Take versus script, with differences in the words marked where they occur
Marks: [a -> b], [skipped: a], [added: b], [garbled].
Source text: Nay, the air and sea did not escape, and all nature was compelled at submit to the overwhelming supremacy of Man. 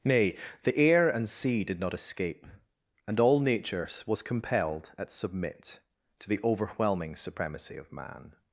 Nay, the air and sea did not escape, and all nature was compelled at submit to the overwhelming supremacy of Man.